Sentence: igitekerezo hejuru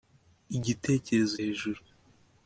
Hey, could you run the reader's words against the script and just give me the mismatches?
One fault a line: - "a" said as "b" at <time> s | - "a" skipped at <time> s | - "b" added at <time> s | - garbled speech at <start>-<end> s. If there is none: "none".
none